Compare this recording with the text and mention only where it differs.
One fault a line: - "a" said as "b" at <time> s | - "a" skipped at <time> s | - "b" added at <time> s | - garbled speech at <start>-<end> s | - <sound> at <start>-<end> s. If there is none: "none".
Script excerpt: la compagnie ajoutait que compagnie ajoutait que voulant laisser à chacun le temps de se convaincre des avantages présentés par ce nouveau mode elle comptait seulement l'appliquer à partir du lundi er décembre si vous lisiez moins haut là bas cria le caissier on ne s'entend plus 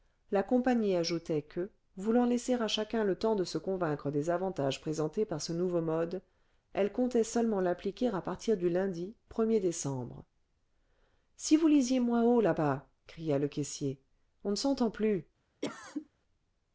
- "compagnie ajoutait que" skipped at 1.7 s
- cough at 15.6-16.1 s